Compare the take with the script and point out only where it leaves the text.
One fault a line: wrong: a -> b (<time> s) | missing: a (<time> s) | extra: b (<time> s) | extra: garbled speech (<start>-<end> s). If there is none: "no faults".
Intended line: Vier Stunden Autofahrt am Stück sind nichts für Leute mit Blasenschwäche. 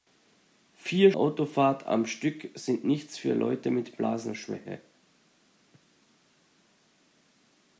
missing: Stunden (1.1 s)